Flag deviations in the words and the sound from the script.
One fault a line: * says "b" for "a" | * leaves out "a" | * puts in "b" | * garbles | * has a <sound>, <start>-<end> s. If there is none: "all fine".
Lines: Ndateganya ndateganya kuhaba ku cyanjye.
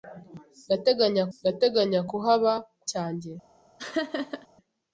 * has a laugh, 3.8-4.5 s